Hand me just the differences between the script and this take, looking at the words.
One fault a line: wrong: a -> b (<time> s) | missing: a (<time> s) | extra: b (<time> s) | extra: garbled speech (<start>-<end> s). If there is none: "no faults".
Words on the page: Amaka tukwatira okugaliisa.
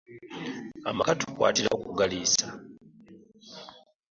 no faults